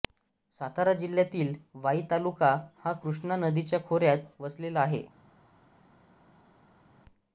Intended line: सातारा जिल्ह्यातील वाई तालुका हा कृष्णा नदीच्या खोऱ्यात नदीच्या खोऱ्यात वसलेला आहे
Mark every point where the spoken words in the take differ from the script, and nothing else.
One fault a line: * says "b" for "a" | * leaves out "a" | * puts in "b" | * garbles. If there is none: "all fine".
* leaves out "नदीच्या खोऱ्यात"